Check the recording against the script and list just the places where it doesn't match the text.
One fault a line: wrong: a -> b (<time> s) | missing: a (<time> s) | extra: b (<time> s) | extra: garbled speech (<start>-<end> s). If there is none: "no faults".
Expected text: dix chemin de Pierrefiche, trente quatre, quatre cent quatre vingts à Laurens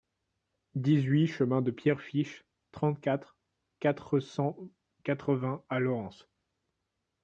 extra: huit (1.0 s)